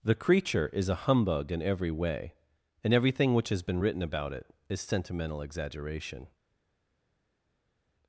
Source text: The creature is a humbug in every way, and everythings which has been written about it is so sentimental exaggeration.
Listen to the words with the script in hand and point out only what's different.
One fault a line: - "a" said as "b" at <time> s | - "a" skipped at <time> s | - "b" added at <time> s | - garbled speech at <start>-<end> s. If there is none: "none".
- "everythings" said as "everything" at 2.9 s
- "so" skipped at 4.8 s